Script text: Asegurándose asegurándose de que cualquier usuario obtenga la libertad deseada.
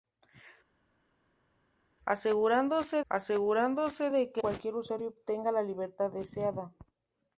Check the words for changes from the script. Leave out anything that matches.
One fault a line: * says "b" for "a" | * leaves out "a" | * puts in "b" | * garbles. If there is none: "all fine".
all fine